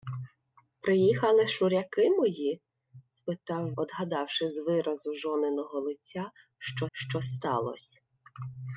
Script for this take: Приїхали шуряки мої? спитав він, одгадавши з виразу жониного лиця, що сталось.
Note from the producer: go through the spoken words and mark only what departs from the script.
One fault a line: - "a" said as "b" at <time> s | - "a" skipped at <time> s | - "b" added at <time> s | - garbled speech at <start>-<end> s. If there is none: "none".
- "він" skipped at 3.7 s
- "що" added at 6.9 s